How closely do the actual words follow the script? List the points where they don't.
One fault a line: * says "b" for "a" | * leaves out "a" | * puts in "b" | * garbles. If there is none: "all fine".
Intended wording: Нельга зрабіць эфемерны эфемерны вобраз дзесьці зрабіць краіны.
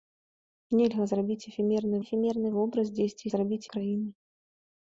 all fine